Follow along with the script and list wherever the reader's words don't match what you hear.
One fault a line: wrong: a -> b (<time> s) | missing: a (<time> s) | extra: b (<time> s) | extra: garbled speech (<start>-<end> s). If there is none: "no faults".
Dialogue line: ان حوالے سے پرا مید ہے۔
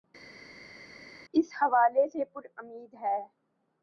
wrong: ان -> اس (1.3 s)